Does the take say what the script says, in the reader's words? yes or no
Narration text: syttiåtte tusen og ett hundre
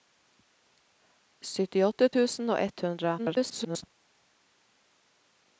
no